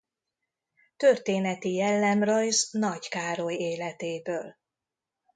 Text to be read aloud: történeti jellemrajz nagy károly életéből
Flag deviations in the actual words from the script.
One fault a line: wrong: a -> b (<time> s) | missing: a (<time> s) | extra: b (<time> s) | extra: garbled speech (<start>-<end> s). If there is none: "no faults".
no faults